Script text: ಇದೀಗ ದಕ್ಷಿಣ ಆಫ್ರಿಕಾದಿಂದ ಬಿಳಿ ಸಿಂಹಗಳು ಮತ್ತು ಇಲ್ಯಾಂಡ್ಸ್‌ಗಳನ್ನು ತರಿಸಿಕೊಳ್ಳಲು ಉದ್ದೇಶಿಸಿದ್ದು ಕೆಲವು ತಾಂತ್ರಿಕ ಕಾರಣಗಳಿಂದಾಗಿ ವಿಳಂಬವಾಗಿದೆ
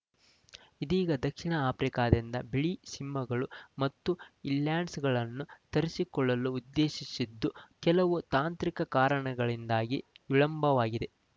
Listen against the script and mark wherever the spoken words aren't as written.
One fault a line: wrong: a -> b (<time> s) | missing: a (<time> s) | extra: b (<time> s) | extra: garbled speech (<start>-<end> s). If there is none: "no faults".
no faults